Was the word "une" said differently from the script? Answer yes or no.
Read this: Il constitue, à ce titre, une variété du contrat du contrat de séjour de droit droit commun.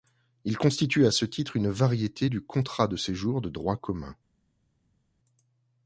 no